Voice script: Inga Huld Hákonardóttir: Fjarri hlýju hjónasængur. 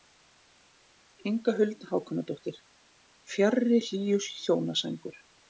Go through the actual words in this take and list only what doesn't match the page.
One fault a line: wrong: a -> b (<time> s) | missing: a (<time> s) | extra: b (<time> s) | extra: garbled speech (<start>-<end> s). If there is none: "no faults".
no faults